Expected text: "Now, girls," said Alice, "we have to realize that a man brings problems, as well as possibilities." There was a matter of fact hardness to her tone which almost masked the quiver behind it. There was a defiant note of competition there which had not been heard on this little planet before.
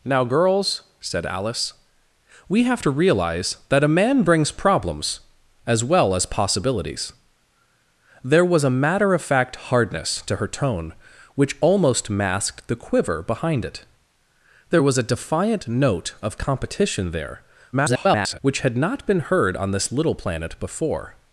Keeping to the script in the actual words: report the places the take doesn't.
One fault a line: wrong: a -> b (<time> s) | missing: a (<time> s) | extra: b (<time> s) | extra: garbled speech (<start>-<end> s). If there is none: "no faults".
extra: garbled speech (17.7-18.4 s)